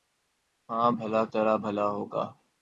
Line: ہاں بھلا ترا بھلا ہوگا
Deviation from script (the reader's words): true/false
false